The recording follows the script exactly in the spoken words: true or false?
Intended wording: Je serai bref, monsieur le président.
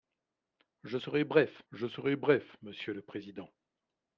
false